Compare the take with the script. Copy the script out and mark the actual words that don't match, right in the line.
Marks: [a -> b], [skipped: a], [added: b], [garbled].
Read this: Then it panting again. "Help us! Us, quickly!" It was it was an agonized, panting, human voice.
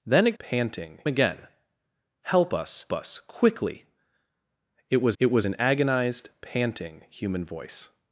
Then it panting again. "Help us! Us, quickly!" It was it was an agonized, panting, human voice.